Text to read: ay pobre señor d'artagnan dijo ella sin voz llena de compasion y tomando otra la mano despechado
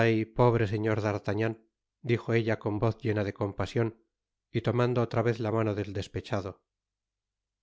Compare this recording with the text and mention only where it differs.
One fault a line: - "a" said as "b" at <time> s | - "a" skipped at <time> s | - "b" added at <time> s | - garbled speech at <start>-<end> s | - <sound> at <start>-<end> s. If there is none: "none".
- "sin" said as "con" at 2.6 s
- "vez" added at 5.3 s
- "del" added at 5.8 s